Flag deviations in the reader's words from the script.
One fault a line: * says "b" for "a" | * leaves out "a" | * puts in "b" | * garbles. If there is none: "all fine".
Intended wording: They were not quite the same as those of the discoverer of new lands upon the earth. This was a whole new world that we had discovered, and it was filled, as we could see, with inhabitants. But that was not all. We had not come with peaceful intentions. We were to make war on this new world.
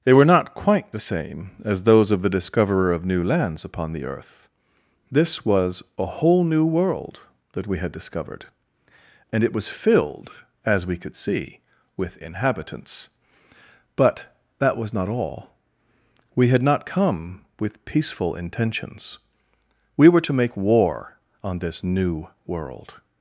all fine